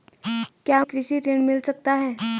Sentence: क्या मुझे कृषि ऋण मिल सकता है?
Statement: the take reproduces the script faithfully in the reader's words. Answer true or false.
false